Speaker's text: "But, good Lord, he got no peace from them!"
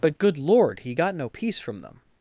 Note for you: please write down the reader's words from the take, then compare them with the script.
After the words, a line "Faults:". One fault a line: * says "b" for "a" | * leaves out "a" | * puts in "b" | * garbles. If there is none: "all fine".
"But, good Lord, he got no peace from them!"
Faults:
all fine